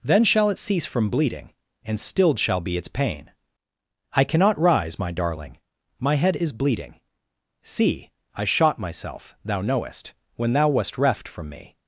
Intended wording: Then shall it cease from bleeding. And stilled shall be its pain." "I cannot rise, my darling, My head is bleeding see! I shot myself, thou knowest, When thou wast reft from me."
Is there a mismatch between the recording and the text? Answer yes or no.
no